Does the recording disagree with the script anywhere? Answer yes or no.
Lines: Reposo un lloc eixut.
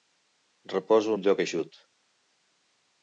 no